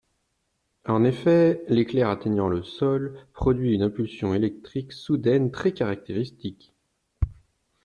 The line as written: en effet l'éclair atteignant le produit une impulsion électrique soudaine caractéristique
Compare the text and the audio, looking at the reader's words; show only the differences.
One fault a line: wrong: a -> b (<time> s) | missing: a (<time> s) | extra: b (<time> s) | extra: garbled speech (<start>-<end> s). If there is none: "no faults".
extra: sol (2.6 s)
extra: très (5.5 s)